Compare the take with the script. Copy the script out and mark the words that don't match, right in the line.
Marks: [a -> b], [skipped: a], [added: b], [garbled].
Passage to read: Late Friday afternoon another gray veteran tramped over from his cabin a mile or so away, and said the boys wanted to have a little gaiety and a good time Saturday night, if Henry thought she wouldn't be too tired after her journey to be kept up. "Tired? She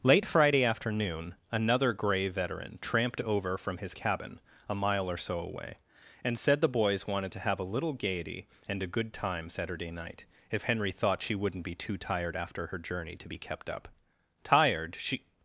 Late Friday afternoon another gray veteran tramped over from his cabin a mile or so away, and said the boys wanted to have a little gaiety and a good time Saturday night, if Henry thought she wouldn't be too tired after her journey to be kept up. "Tired? She